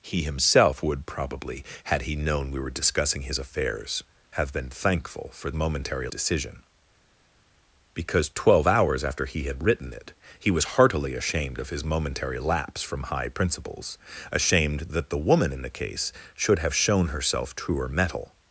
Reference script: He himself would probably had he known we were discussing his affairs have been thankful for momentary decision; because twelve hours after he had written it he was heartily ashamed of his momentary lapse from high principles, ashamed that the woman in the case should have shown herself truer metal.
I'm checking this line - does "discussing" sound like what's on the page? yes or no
yes